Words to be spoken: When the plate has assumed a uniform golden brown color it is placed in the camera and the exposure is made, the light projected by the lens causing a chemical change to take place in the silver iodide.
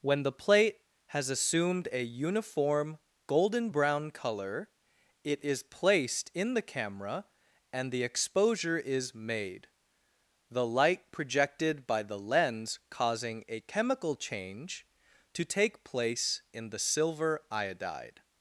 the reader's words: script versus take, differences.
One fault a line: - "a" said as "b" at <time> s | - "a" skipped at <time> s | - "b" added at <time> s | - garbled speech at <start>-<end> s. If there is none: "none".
none